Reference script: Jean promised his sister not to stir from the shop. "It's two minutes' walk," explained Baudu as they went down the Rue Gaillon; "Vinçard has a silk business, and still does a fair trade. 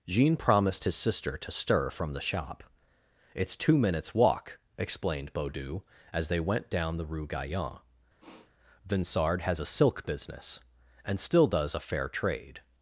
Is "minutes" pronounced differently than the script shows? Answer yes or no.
no